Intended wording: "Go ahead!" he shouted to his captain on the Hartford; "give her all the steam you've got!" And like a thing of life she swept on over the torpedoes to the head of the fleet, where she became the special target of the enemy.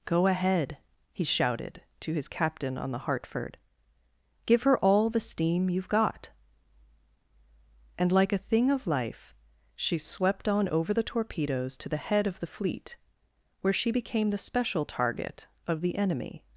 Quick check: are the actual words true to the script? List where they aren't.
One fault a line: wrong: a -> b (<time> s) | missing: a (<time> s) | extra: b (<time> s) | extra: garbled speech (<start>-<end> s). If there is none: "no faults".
no faults